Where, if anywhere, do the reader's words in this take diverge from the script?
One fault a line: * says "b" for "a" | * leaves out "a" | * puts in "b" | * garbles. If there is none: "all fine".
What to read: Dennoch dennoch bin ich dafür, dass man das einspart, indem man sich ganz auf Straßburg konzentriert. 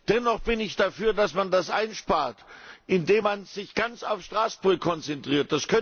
* leaves out "dennoch"